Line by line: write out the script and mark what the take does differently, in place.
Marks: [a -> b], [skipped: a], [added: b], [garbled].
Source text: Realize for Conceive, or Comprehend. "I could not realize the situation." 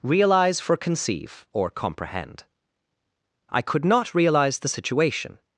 Realize for Conceive, or Comprehend. "I could not realize the situation."